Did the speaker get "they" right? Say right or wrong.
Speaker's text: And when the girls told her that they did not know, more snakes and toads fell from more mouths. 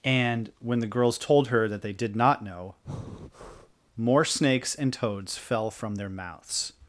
right